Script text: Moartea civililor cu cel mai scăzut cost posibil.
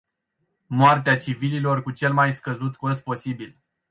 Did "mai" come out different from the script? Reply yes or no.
no